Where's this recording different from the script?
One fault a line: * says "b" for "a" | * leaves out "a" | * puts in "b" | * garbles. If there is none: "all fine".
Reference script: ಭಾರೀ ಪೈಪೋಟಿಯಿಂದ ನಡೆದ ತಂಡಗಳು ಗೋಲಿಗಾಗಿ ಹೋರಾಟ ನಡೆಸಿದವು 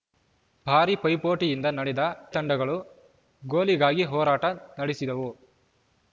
all fine